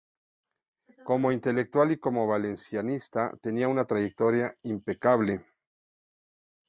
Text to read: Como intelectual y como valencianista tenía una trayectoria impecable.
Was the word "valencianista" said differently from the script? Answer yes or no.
no